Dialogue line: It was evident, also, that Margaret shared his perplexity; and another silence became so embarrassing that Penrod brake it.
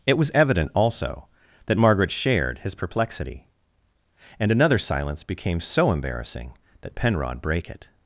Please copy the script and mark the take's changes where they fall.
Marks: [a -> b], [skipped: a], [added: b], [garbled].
It was evident, also, that Margaret shared his perplexity; and another silence became so embarrassing that Penrod brake it.